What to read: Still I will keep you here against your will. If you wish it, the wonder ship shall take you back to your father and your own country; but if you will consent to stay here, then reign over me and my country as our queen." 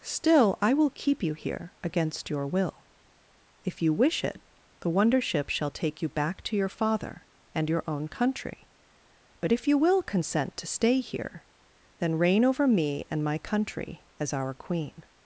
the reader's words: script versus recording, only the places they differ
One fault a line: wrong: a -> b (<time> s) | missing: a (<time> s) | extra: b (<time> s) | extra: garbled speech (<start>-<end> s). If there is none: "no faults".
no faults